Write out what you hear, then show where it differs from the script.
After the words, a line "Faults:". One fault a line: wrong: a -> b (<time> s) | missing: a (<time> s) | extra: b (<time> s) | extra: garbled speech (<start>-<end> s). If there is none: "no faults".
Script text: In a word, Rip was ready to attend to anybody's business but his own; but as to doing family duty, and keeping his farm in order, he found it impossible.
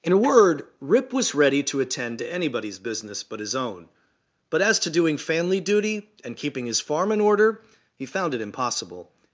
In a word, Rip was ready to attend to anybody's business but his own; but as to doing family duty, and keeping his farm in order, he found it impossible.
Faults:
no faults